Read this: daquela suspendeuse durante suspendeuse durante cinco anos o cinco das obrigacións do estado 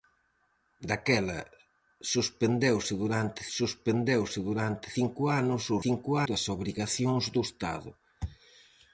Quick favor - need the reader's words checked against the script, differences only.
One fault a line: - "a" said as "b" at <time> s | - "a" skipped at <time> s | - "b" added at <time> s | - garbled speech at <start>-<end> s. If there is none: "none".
none